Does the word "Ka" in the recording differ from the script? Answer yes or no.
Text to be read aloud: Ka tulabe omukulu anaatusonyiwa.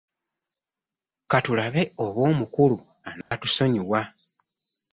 no